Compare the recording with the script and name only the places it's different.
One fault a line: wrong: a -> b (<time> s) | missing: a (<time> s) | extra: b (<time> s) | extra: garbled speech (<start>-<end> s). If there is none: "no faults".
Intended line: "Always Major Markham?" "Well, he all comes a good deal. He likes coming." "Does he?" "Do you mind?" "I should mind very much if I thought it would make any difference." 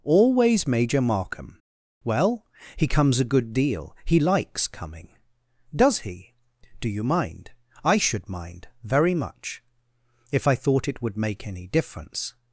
missing: all (2.9 s)